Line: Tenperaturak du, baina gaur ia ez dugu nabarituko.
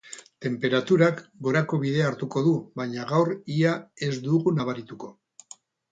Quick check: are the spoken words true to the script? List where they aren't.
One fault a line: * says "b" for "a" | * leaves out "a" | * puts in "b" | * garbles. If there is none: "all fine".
* puts in "gorako bidea hartuko"